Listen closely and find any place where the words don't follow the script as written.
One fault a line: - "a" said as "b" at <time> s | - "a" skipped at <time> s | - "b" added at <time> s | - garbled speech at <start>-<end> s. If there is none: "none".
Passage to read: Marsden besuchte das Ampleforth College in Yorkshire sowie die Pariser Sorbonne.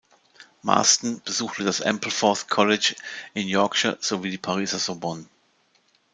none